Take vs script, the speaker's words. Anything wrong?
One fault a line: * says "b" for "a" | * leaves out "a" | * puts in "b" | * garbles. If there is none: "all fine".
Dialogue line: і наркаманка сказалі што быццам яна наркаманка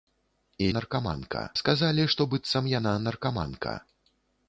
all fine